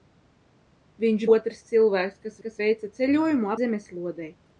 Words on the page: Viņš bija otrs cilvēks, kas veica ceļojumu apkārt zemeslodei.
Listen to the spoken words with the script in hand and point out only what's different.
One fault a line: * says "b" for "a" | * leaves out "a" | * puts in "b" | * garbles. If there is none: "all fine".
* leaves out "bija"
* puts in "kas"
* leaves out "apkārt"